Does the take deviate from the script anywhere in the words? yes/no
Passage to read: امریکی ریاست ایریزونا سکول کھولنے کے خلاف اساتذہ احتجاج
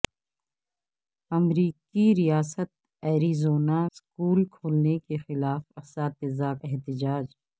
no